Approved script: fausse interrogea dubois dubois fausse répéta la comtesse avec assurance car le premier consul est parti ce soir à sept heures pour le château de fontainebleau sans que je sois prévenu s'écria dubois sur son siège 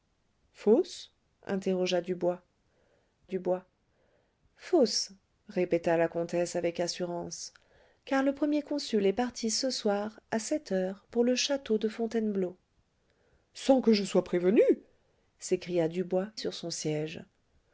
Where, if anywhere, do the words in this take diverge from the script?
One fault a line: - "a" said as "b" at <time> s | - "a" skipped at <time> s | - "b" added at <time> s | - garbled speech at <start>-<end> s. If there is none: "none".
none